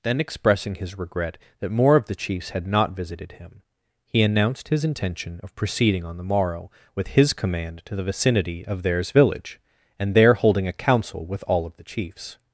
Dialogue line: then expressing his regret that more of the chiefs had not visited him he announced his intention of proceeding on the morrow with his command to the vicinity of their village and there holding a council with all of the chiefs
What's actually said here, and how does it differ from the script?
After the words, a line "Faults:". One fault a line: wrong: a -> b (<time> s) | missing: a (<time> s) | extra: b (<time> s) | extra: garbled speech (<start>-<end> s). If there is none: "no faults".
then expressing his regret that more of the chiefs had not visited him he announced his intention of proceeding on the morrow with his command to the vicinity of theirs village and there holding a council with all of the chiefs
Faults:
wrong: their -> theirs (8.8 s)